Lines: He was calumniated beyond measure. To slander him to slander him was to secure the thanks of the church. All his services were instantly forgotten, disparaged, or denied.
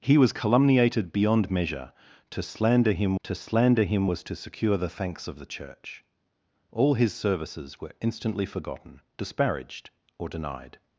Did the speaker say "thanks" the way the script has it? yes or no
yes